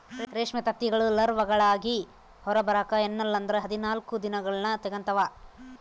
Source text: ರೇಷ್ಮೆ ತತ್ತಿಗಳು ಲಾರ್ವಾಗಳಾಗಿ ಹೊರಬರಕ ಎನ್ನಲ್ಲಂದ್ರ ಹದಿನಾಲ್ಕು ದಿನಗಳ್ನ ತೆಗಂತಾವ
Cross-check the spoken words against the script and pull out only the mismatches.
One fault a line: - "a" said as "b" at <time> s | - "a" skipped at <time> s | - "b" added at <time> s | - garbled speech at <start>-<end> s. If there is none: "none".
none